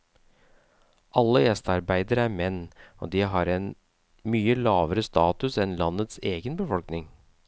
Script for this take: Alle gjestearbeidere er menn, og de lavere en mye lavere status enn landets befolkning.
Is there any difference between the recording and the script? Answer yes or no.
yes